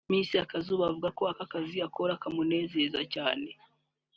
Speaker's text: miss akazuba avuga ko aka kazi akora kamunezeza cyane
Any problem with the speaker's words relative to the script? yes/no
no